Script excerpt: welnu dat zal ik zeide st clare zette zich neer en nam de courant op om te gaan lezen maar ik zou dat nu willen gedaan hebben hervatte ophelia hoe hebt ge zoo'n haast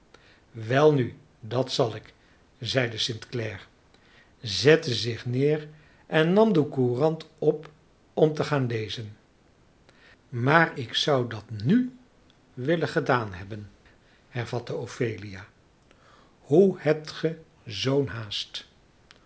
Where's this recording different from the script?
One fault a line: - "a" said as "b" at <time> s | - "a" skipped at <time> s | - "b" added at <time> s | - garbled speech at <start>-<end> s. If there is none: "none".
none